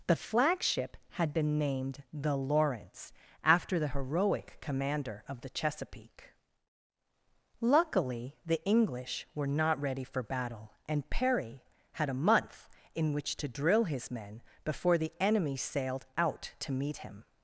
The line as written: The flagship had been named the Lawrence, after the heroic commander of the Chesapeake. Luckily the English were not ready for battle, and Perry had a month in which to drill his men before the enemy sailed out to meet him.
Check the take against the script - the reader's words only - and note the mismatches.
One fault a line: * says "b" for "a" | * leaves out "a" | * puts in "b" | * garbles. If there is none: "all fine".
all fine